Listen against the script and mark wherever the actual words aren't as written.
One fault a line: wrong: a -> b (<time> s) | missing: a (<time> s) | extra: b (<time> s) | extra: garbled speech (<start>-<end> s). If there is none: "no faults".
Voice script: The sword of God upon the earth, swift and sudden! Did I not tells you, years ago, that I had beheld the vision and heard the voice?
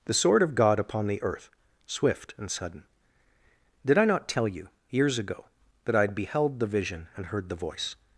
wrong: tells -> tell (4.3 s)